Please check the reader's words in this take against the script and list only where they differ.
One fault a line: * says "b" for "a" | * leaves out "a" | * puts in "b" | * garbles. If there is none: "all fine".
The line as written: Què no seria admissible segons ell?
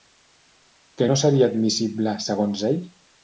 all fine